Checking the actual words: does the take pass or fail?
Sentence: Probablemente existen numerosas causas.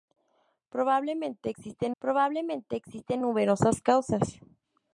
fail